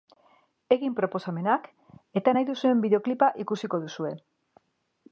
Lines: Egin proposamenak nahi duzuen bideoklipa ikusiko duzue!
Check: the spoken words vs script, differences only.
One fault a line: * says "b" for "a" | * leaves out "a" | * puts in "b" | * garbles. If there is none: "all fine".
* puts in "eta"